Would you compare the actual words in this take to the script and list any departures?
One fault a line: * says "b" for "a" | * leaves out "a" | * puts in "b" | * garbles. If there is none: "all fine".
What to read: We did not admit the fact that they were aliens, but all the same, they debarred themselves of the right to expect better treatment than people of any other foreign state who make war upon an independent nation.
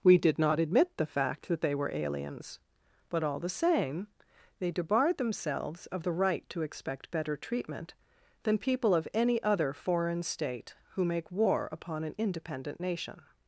all fine